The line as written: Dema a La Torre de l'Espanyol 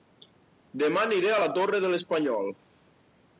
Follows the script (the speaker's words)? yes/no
no